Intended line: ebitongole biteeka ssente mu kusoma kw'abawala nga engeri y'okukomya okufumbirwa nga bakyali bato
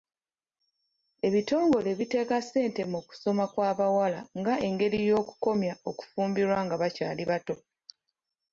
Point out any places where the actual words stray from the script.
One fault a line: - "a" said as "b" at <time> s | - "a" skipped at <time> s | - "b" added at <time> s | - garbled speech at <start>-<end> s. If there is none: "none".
none